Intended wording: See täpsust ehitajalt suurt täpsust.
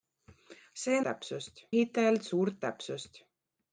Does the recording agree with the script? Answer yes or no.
yes